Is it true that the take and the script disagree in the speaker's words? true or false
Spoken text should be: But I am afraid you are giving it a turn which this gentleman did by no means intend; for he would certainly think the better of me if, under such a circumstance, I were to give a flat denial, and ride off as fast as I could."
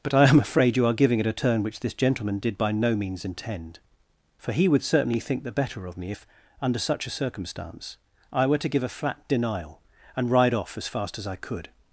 false